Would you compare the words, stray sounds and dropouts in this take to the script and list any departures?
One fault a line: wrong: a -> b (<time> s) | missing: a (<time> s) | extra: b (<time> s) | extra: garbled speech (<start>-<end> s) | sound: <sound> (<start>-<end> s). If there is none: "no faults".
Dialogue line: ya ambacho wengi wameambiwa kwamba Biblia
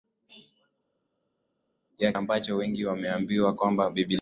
no faults